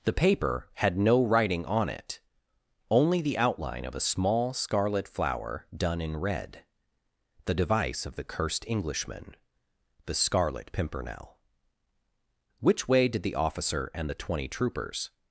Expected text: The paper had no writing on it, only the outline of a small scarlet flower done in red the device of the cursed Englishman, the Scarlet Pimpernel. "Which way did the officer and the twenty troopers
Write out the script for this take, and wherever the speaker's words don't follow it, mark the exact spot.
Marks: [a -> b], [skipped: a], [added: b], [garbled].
The paper had no writing on it, only the outline of a small scarlet flower done in red the device of the cursed Englishman, the Scarlet Pimpernel. "Which way did the officer and the twenty troopers